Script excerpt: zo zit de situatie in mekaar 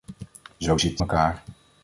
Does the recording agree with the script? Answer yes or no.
no